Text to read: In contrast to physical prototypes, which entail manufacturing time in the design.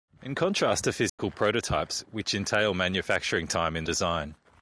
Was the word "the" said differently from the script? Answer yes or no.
yes